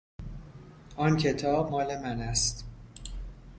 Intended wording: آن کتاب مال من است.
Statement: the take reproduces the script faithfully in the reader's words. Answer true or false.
true